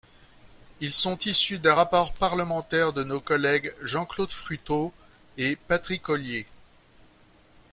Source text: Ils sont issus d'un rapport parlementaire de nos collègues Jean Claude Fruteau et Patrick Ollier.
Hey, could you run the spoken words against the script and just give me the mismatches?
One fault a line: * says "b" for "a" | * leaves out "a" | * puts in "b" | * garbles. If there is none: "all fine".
all fine